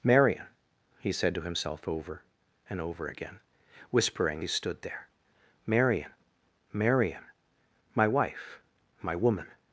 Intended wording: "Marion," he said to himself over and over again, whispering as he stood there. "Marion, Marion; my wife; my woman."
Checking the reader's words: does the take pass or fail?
fail